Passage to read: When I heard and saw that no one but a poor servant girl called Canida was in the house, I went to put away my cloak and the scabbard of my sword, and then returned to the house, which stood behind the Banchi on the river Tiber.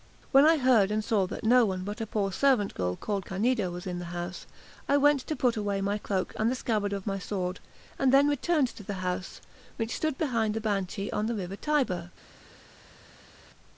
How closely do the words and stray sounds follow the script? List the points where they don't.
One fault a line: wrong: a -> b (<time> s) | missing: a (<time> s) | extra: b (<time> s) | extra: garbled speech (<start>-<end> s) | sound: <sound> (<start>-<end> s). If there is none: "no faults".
no faults